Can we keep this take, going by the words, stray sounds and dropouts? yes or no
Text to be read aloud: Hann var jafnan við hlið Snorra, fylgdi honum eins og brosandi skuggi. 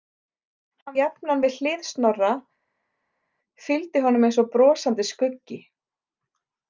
no